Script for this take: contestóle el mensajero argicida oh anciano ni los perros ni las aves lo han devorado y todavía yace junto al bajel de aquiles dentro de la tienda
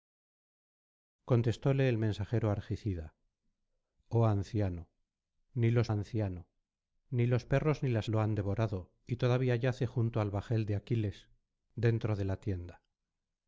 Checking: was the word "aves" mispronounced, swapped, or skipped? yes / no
yes